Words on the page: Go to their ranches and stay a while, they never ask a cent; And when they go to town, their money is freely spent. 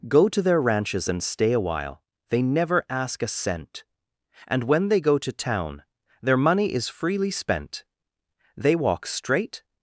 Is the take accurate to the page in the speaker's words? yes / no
no